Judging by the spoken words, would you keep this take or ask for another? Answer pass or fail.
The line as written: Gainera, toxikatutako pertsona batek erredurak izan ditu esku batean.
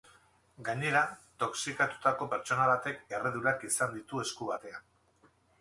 pass